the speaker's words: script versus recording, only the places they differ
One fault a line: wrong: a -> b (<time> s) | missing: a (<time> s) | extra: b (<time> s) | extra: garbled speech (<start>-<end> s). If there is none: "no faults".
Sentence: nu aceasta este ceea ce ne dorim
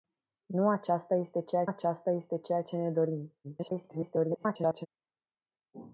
extra: aceasta este ceea (1.6 s)
extra: garbled speech (3.4-4.9 s)